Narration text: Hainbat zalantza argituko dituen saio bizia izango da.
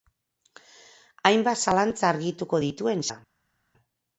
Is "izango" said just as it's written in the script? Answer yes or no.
no